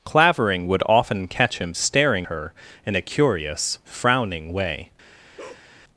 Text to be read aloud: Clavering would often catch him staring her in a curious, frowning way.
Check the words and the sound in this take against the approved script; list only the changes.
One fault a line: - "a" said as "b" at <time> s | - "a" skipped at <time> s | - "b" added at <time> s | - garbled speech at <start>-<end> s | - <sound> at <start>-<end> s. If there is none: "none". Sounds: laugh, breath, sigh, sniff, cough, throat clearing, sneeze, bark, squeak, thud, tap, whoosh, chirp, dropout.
- bark at 5.4-5.7 s